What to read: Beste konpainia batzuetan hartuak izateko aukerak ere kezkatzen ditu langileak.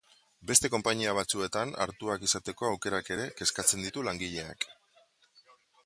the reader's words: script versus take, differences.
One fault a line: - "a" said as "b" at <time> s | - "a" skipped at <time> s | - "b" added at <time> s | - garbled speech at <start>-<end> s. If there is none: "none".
none